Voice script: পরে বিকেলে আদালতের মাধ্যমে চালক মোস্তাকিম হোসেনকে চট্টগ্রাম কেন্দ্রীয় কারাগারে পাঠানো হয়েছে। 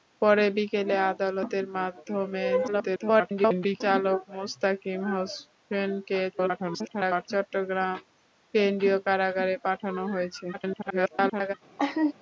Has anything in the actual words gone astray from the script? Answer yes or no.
yes